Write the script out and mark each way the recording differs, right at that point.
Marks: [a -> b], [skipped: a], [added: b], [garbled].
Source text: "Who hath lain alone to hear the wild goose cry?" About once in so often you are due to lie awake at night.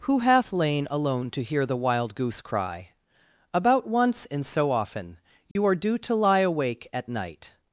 "Who hath lain alone to hear the wild goose cry?" About once in so often you are due to lie awake at night.